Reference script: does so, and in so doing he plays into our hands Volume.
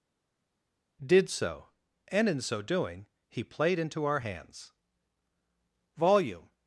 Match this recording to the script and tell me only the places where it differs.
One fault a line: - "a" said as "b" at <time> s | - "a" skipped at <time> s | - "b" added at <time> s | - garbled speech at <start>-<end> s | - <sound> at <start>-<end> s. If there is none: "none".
- "does" said as "did" at 1.1 s
- "plays" said as "played" at 3.4 s